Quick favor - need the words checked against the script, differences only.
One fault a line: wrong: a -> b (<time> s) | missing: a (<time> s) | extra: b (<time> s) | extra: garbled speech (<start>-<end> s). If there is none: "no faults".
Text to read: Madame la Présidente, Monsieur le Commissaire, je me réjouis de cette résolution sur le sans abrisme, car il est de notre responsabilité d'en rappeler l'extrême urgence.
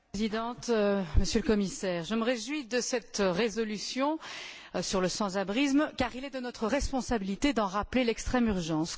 no faults